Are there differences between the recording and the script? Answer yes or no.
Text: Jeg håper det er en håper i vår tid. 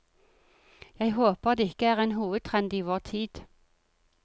yes